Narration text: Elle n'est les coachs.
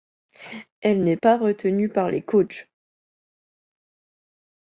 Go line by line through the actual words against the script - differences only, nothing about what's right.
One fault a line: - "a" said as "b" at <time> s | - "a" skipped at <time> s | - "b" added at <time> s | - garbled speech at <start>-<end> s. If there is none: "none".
- "pas retenue par" added at 1.1 s